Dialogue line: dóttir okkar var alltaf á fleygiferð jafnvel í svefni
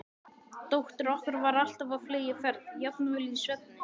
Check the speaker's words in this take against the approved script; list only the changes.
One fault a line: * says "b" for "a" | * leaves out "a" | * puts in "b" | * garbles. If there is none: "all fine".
all fine